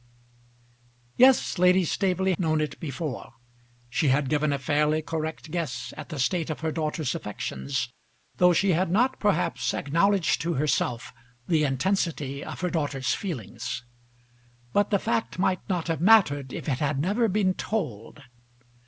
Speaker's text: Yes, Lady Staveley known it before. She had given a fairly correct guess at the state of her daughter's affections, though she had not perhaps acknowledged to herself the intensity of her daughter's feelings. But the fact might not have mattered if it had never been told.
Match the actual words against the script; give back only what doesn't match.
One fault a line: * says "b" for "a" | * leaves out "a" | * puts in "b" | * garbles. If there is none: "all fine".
all fine